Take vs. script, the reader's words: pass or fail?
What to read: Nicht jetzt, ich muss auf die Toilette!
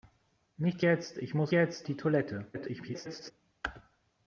fail